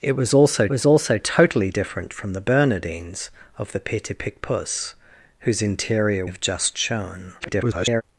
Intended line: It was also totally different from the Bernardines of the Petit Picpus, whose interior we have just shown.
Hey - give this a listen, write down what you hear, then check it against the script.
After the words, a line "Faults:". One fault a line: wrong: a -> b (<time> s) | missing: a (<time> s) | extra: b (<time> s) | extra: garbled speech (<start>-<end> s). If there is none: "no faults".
It was also was also totally different from the Bernardines of the Petit Picpus, whose interior have just shown. [garbled]
Faults:
extra: was also (0.7 s)
missing: we (6.2 s)
extra: garbled speech (7.4-8.0 s)